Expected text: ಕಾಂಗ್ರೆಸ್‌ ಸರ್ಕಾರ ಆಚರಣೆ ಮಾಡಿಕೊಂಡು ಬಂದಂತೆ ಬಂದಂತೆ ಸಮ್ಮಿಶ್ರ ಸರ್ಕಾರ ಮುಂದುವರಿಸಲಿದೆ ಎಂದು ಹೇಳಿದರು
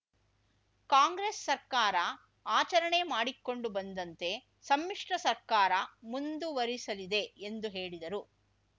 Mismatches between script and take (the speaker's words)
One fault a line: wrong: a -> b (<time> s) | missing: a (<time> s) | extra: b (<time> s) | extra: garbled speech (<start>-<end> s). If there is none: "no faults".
missing: ಬಂದಂತೆ (4.3 s)